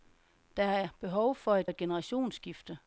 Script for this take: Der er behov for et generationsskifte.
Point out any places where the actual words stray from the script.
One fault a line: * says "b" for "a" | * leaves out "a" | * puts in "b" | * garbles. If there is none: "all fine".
* puts in "et"